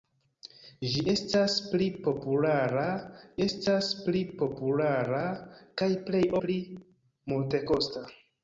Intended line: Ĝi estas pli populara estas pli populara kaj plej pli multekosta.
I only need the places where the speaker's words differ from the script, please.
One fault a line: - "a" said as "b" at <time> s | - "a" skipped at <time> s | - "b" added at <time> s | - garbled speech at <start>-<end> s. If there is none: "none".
none